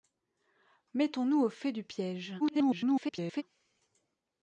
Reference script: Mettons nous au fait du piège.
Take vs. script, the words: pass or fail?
fail